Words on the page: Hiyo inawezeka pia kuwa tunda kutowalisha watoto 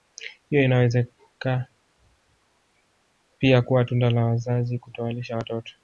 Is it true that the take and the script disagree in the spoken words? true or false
true